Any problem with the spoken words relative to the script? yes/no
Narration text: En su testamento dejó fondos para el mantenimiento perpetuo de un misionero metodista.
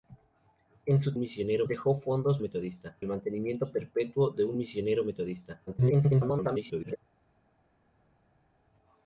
yes